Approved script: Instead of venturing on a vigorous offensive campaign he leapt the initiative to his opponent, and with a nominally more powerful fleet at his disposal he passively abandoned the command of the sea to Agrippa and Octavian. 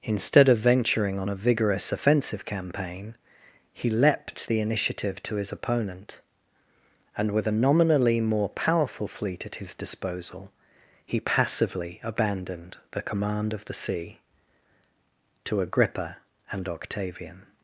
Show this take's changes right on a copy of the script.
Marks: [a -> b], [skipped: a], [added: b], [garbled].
Instead of venturing on a vigorous offensive campaign he leapt the initiative to his opponent, and with a nominally more powerful fleet at his disposal he passively abandoned the command of the sea to Agrippa and Octavian.